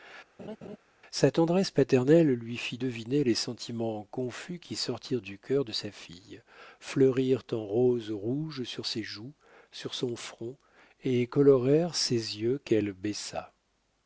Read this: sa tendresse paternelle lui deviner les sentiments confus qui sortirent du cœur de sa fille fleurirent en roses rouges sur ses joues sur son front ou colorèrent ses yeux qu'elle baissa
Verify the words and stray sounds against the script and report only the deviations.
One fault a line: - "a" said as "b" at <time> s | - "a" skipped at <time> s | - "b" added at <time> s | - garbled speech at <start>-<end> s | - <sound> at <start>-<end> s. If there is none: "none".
- laugh at 0.4-0.8 s
- "fit" added at 2.6 s
- "ou" said as "et" at 11.0 s